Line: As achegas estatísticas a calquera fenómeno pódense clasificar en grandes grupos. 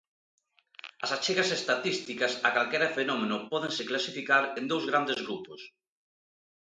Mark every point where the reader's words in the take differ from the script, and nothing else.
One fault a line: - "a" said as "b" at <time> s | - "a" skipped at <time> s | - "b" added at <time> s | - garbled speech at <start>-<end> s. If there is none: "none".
- "dous" added at 4.7 s